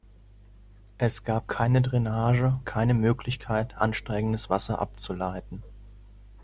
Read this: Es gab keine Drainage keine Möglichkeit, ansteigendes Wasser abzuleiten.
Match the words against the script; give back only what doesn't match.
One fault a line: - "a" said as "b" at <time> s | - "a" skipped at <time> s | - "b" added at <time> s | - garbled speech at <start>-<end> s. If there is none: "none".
none